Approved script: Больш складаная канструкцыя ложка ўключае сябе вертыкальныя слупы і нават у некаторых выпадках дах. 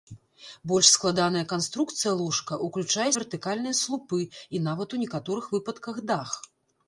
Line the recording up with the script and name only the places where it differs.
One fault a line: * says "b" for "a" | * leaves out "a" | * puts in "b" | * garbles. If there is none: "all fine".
* leaves out "сябе"